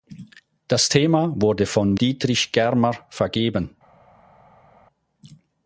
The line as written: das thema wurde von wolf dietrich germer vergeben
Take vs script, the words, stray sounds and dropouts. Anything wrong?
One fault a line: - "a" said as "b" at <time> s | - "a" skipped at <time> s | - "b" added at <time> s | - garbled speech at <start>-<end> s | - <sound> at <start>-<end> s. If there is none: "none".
- "wolf" skipped at 1.9 s